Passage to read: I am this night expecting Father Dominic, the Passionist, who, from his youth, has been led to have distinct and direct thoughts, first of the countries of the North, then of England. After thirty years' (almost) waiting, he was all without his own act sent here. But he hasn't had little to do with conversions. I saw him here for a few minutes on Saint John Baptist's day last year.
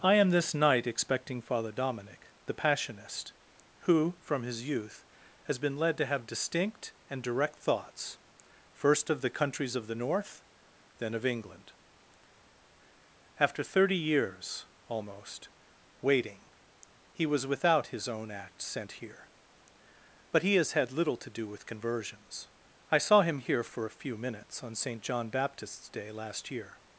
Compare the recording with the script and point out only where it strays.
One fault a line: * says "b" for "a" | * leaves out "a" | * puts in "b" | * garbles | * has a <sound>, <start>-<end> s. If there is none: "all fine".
* leaves out "all"
* says "has" for "hasn't"